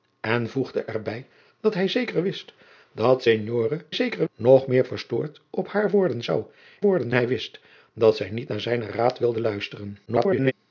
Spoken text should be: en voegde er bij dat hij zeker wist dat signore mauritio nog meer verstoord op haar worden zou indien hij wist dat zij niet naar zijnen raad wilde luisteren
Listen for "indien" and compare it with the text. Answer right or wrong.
wrong